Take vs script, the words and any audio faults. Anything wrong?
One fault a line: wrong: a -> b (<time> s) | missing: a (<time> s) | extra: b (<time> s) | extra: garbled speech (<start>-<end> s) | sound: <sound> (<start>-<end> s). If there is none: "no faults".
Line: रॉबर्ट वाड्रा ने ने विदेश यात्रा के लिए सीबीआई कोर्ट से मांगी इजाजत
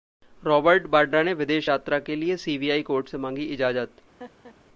missing: ने (1.3 s)
sound: laugh (4.2-4.6 s)